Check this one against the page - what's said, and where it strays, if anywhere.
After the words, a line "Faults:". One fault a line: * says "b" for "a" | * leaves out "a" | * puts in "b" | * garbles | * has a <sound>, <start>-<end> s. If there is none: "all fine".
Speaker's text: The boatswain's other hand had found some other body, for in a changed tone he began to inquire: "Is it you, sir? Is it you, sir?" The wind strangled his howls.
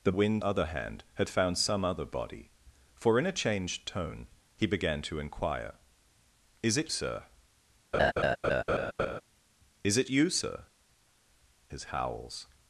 The wind other hand had found some other body, for in a changed tone he began to inquire: "Is it sir? Is it you, sir?" His howls.
Faults:
* says "wind" for "boatswain's"
* leaves out "you"
* has a laugh, 7.9-9.2 s
* leaves out "The wind strangled"